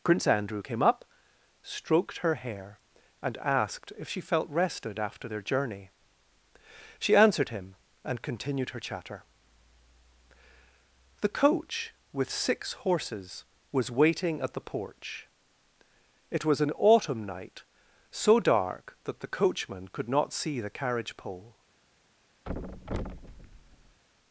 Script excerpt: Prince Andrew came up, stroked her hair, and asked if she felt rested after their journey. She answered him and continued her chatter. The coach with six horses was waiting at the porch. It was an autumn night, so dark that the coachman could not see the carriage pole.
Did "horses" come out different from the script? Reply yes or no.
no